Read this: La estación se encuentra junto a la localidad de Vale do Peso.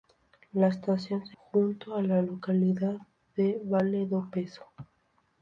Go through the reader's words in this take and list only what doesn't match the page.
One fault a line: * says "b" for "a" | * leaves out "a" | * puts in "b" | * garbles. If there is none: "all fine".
* leaves out "encuentra"